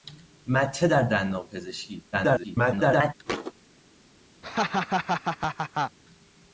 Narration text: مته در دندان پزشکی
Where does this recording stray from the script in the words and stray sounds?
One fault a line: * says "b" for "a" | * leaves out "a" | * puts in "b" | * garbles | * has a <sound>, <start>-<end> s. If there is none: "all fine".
* garbles
* has a thud, 3.3-3.5 s
* has a laugh, 4.4-6.0 s